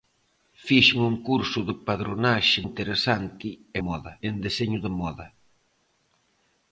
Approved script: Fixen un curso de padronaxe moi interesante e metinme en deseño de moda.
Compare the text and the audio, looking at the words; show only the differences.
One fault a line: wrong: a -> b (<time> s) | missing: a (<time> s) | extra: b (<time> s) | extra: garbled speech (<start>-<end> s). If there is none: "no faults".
missing: moi (2.6 s)
wrong: metinme -> moda (3.9 s)